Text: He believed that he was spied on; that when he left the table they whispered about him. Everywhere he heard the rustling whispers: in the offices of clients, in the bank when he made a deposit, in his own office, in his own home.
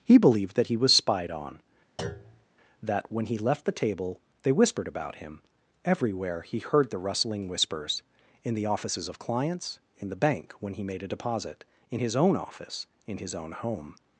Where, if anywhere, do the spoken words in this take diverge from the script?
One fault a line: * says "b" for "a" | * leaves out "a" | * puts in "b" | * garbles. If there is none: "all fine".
all fine